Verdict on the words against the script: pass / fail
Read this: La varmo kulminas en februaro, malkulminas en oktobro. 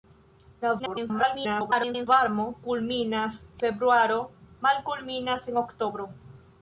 fail